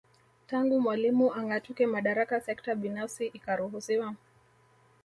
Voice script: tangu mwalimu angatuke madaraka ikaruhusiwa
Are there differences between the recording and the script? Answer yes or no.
yes